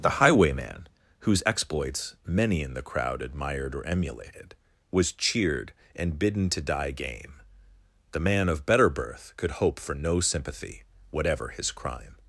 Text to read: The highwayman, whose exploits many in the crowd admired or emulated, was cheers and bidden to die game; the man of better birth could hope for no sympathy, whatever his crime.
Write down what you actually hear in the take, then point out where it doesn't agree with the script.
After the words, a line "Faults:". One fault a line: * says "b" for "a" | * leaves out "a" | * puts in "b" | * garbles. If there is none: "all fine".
The highwayman, whose exploits many in the crowd admired or emulated, was cheered and bidden to die game; the man of better birth could hope for no sympathy, whatever his crime.
Faults:
* says "cheered" for "cheers"